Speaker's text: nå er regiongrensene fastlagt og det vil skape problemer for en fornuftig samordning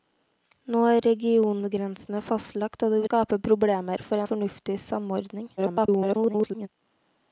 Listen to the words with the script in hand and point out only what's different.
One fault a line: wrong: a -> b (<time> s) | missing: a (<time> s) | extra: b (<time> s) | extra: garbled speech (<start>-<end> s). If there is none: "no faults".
missing: vil (3.0 s)
missing: en (4.2 s)
extra: garbled speech (5.6-6.7 s)